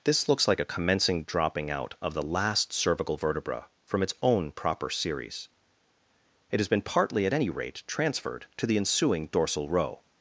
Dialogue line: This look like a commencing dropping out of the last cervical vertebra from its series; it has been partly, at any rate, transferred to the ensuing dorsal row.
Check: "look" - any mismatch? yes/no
yes